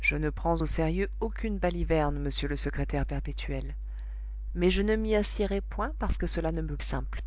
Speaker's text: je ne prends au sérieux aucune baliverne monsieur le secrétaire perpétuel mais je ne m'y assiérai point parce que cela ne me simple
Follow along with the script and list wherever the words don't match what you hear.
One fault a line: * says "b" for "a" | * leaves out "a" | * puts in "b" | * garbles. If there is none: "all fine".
all fine